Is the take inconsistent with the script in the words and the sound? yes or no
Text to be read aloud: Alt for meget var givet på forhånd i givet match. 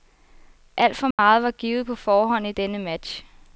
yes